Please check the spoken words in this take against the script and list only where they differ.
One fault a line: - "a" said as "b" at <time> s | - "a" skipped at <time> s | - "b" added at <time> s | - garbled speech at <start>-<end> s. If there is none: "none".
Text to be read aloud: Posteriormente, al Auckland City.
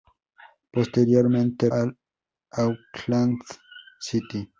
none